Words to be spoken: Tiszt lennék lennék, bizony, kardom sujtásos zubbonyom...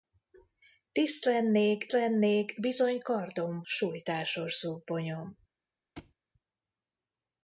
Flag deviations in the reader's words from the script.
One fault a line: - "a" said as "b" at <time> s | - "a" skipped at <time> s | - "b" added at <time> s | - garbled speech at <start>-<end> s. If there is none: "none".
none